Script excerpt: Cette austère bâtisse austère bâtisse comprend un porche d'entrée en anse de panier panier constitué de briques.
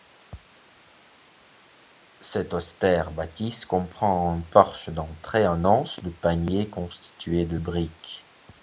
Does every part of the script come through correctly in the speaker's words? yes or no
no